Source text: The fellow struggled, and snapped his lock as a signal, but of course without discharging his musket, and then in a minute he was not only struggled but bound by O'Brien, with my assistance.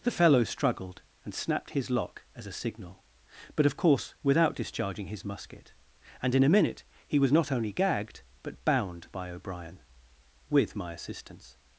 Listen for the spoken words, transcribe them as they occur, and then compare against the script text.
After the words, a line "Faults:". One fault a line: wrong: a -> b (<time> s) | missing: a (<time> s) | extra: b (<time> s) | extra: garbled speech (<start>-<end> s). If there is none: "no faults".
The fellow struggled, and snapped his lock as a signal, but of course without discharging his musket, and in a minute he was not only gagged but bound by O'Brien, with my assistance.
Faults:
missing: then (6.3 s)
wrong: struggled -> gagged (7.7 s)